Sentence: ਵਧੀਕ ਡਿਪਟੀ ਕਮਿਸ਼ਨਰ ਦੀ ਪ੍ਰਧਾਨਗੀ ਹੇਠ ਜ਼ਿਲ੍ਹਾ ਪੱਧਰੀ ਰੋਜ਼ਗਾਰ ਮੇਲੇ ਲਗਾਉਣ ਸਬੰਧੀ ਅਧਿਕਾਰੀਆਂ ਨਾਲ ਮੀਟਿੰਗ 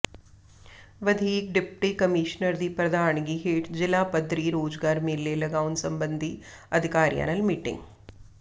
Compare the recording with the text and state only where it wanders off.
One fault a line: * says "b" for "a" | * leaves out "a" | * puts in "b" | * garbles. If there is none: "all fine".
all fine